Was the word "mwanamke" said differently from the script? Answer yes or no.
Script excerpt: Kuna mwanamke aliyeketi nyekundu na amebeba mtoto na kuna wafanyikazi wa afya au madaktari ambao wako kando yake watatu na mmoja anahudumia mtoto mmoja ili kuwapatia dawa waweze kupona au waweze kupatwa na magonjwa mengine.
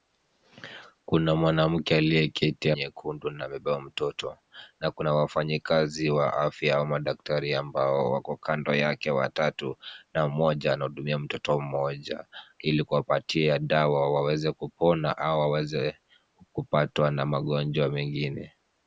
no